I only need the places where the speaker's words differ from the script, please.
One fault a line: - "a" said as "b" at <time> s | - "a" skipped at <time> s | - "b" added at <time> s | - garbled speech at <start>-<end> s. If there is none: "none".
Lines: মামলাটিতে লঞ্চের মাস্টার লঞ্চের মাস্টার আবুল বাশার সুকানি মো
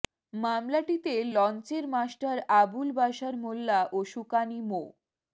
- "লঞ্চের মাস্টার আবুল বাশার" said as "আবুল বাশার মোল্লা ও" at 2.6 s